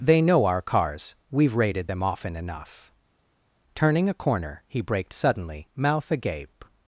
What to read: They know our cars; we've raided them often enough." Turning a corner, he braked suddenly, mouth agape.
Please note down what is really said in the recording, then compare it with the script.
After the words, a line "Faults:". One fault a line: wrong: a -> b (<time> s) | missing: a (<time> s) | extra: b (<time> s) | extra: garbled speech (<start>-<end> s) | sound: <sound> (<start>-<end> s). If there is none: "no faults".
They know our cars; we've raided them often enough." Turning a corner, he braked suddenly, mouth agape.
Faults:
no faults